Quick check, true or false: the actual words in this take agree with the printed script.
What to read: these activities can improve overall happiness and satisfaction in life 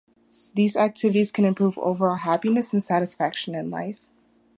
true